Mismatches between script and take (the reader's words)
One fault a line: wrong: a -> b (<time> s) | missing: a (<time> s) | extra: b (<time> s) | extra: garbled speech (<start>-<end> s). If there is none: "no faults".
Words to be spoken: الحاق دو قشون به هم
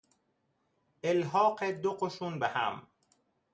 no faults